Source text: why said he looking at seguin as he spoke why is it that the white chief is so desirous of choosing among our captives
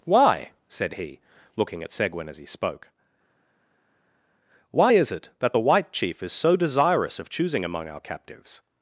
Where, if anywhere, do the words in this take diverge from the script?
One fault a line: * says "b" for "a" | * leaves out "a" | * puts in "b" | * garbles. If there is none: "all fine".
all fine